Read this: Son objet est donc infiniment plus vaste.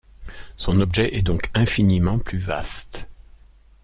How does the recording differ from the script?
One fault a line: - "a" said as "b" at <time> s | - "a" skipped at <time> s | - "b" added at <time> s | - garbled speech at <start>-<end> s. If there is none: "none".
none